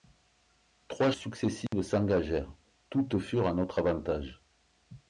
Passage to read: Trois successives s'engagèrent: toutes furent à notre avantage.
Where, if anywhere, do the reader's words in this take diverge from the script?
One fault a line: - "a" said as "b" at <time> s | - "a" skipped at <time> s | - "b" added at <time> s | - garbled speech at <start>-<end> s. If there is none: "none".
none